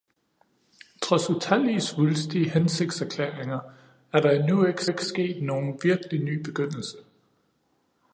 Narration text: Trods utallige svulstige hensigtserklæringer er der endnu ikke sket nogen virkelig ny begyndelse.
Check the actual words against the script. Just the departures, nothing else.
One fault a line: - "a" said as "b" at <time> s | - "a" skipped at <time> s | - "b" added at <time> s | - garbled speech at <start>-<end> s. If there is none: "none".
- "ikke" added at 4.8 s